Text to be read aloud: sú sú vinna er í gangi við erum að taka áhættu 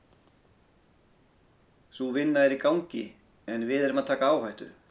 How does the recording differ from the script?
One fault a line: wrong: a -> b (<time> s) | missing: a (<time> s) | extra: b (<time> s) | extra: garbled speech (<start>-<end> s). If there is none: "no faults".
missing: sú (2.1 s)
extra: en (3.5 s)